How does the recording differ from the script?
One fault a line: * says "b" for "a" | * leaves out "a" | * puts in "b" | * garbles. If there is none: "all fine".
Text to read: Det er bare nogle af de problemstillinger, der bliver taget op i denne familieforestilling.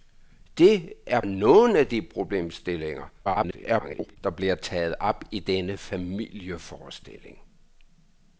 * leaves out "bare"
* garbles